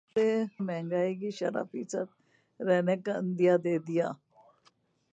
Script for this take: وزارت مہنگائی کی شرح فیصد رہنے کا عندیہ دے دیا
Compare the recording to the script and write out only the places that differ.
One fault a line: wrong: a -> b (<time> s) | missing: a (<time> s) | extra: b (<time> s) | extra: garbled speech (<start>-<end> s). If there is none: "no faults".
no faults